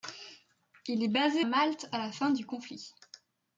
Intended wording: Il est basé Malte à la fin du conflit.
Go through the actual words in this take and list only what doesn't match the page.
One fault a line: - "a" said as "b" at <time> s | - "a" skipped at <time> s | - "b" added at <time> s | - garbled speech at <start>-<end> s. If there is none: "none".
none